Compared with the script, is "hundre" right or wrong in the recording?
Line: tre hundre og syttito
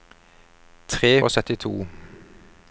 wrong